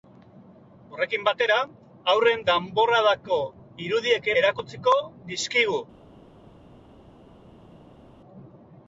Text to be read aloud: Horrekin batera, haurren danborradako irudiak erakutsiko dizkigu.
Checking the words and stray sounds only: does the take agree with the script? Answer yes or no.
yes